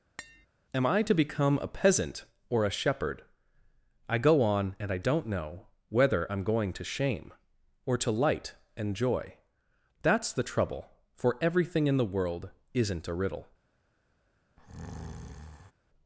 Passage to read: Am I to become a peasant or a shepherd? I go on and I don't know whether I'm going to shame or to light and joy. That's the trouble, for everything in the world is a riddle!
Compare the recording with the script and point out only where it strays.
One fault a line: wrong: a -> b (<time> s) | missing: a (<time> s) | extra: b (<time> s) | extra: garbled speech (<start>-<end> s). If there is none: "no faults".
wrong: is -> isn't (12.7 s)